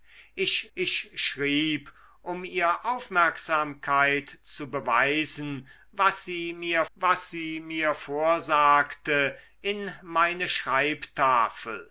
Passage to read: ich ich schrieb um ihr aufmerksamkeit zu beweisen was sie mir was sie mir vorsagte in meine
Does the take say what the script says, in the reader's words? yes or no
yes